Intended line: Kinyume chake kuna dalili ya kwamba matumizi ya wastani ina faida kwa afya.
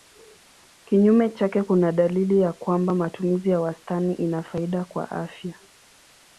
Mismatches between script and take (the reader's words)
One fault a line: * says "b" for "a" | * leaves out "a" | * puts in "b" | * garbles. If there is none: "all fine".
all fine